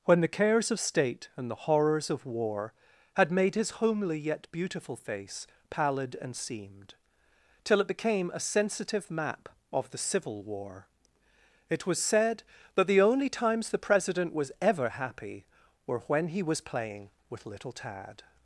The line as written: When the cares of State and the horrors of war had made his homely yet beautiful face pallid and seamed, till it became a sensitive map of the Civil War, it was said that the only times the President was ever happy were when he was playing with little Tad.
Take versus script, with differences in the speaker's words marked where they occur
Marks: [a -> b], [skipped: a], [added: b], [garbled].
When the cares of State and the horrors of war had made his homely yet beautiful face pallid and seamed, till it became a sensitive map of the Civil War, it was said that the only times the President was ever happy were when he was playing with little Tad.